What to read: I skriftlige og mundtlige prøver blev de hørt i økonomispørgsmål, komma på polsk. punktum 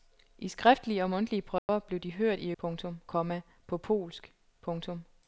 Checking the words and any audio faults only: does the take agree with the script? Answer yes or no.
no